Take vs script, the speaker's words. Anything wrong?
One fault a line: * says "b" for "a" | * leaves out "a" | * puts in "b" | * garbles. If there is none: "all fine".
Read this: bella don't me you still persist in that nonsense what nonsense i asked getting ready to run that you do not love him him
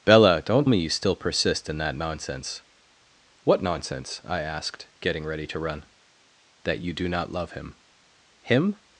all fine